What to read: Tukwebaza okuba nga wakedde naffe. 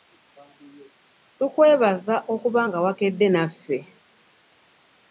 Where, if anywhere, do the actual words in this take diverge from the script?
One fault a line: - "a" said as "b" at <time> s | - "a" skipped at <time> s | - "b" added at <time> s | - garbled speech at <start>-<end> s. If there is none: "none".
none